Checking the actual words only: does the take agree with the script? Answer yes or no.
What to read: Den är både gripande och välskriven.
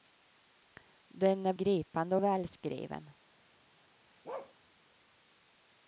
no